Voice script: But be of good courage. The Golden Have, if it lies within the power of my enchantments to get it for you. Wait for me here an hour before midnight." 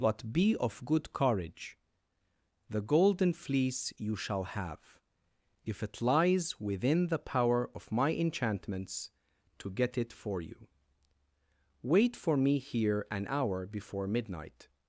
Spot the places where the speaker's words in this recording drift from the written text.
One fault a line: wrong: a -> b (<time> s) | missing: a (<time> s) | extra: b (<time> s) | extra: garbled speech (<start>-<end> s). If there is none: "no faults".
extra: Fleece you shall (3.3 s)